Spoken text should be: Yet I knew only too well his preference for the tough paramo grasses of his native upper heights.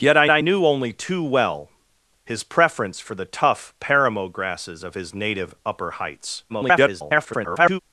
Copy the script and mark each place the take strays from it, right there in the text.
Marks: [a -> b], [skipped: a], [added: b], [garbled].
Yet I [added: I] knew only too well his preference for the tough paramo grasses of his native upper heights. [garbled]